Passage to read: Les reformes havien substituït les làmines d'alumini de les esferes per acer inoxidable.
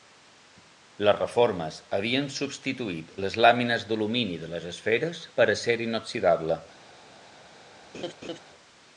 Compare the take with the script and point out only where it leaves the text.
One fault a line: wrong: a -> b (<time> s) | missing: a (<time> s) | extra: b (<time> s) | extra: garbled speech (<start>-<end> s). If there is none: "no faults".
no faults